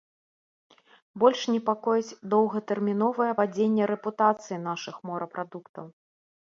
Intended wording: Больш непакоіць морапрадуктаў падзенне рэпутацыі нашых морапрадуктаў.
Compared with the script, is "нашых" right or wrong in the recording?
right